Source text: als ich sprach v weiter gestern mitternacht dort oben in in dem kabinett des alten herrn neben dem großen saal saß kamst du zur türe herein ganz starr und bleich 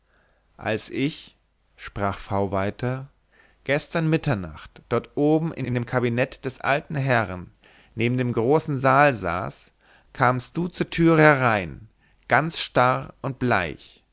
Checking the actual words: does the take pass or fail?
pass